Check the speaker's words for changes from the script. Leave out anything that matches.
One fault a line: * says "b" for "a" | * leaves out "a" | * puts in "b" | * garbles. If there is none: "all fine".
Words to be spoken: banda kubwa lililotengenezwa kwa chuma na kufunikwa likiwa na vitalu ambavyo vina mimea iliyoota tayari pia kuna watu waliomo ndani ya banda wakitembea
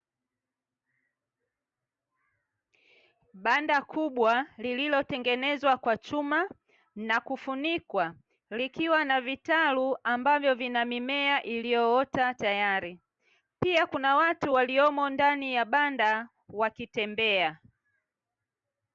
all fine